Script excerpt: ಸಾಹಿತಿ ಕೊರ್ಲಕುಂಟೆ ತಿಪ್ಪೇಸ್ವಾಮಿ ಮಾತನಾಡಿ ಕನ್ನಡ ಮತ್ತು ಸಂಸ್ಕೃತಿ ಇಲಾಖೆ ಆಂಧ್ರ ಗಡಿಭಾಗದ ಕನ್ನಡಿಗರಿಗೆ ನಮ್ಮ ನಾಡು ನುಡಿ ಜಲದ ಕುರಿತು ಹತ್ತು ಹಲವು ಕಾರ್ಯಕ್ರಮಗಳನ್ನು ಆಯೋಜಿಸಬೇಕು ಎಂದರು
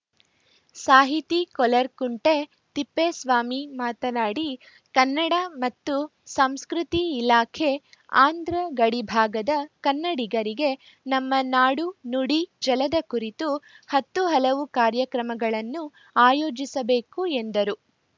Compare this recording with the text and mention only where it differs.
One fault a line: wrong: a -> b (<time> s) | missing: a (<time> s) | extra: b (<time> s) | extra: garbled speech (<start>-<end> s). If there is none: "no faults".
no faults